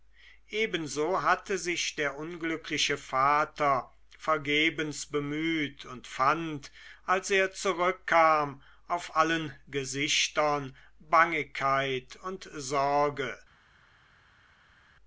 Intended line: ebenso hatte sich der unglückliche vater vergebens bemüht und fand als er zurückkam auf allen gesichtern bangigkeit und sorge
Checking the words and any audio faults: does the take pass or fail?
pass